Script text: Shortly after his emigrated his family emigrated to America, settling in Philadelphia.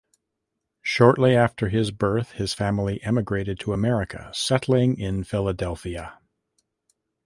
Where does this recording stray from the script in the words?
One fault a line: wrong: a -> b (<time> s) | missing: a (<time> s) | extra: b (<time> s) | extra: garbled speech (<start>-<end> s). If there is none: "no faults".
wrong: emigrated -> birth (1.9 s)